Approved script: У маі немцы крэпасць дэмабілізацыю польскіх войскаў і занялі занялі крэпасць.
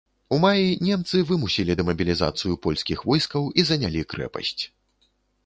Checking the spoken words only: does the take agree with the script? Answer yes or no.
no